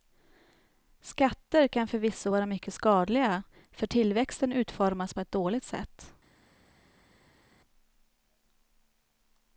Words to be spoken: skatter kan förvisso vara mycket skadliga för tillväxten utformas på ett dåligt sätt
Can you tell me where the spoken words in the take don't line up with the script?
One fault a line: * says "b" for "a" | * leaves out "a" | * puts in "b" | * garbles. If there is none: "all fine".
all fine